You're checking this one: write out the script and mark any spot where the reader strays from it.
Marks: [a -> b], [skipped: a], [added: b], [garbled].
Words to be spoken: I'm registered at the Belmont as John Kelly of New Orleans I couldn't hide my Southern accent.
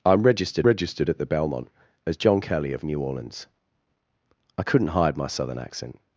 I'm registered [added: registered] at the Belmont as John Kelly of New Orleans I couldn't hide my Southern accent.